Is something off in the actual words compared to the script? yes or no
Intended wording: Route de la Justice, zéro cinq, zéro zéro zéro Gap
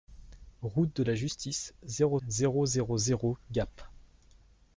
yes